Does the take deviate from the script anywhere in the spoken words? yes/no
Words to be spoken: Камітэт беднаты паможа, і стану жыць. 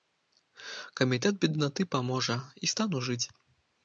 no